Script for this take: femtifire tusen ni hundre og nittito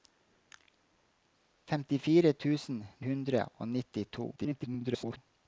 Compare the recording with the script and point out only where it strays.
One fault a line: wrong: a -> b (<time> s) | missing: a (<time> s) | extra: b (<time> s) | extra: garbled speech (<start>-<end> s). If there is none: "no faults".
missing: ni (2.8 s)
extra: garbled speech (4.4-5.2 s)